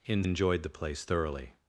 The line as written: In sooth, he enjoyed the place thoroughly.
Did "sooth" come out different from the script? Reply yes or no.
yes